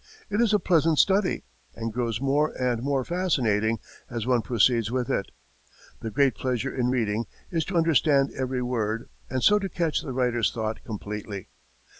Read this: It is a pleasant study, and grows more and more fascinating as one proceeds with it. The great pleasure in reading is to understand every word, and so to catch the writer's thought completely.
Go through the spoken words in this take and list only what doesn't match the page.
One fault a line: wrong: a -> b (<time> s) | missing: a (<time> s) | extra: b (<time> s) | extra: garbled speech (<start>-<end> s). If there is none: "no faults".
no faults